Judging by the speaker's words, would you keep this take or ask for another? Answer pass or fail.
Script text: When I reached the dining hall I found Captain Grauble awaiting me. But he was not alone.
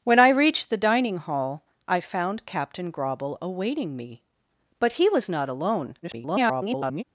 fail